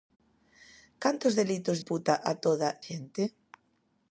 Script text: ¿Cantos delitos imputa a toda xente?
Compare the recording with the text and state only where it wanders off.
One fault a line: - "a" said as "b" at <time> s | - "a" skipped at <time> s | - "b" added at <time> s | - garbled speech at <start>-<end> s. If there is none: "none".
none